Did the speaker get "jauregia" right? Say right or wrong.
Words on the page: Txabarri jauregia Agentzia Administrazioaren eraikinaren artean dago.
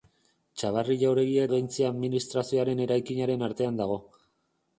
right